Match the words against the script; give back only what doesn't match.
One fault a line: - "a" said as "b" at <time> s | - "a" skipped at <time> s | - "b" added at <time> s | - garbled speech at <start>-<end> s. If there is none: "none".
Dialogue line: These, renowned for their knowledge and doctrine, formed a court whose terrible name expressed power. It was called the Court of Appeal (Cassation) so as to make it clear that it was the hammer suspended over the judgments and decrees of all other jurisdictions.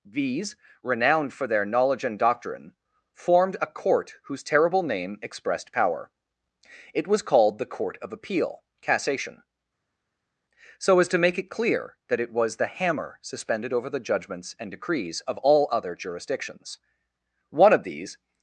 - "One of these" added at 17.5 s